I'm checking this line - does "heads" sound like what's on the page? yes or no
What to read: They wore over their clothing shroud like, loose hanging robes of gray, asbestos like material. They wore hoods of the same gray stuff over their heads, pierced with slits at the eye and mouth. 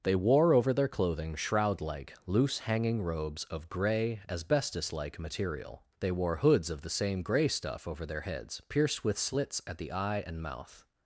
yes